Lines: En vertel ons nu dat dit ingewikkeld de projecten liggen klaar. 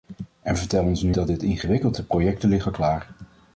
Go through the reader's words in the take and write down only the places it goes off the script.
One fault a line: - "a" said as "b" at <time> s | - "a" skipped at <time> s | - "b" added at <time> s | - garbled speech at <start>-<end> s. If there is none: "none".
none